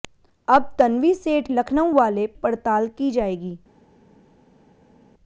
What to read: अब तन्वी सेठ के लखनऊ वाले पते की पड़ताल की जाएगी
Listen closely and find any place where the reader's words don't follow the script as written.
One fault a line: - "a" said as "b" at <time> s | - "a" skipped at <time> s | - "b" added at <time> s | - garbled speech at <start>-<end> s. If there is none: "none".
- "के" skipped at 1.5 s
- "पते की" skipped at 2.3 s